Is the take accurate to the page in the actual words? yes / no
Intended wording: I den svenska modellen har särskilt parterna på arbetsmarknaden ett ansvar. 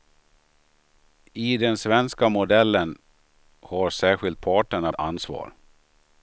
no